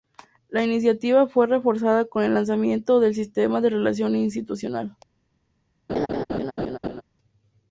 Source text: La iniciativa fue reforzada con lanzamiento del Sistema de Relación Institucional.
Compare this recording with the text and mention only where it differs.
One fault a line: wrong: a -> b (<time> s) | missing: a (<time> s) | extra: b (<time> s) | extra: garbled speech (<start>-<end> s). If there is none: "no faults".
extra: el (2.2 s)